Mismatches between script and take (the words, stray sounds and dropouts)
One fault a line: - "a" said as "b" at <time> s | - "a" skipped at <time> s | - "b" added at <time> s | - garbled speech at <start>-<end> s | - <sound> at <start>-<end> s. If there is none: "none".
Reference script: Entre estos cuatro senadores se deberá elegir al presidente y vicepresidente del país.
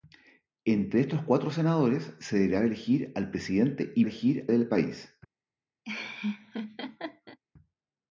- "vicepresidente" said as "elegir" at 4.0 s
- laugh at 5.8-7.4 s